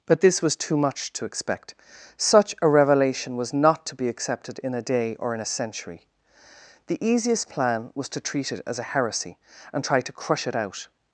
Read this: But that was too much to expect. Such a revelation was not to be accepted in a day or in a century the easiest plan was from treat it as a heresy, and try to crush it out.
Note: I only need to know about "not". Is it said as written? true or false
true